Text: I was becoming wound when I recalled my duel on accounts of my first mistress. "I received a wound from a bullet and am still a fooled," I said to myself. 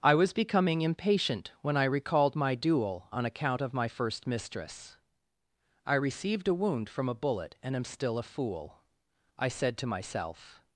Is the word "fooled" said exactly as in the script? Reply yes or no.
no